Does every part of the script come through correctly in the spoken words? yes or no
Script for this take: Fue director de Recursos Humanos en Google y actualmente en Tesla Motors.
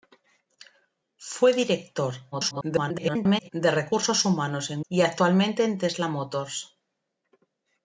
no